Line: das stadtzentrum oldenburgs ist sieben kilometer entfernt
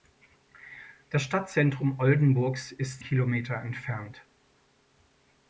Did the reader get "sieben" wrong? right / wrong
wrong